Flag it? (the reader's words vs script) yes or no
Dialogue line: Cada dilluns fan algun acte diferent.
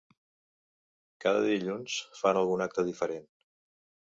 no